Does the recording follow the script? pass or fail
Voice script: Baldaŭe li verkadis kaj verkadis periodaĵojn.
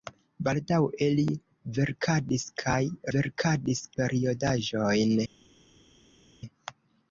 pass